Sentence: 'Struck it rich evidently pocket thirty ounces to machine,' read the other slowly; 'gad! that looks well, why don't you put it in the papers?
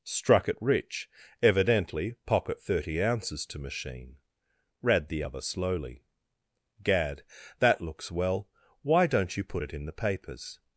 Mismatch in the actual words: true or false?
false